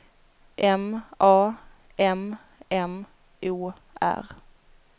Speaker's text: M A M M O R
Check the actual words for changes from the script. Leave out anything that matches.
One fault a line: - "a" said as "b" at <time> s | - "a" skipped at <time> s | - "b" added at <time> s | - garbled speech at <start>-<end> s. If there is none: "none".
none